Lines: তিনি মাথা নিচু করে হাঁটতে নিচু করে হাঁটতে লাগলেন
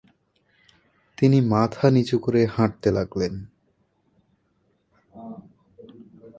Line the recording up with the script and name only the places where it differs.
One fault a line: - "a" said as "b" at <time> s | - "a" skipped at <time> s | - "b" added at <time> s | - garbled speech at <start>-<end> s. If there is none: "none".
- "নিচু করে হাঁটতে" skipped at 2.9 s